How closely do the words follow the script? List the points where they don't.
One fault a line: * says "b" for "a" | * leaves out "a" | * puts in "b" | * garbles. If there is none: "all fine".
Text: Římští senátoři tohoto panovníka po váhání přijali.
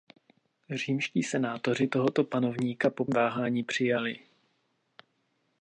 all fine